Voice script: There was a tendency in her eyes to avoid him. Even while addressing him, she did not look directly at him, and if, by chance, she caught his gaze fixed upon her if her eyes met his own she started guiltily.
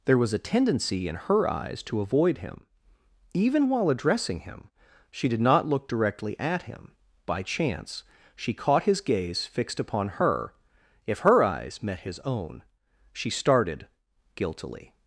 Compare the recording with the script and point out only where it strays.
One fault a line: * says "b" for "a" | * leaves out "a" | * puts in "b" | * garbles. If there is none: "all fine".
* leaves out "and if"